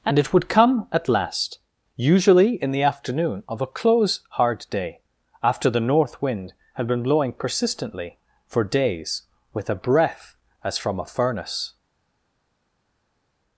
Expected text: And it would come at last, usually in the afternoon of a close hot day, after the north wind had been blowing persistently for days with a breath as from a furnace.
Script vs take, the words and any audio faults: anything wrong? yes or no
yes